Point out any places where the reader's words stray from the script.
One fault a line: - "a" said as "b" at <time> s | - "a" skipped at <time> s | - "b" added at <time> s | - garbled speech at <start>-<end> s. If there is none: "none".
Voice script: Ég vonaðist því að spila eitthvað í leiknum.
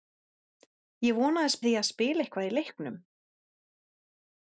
none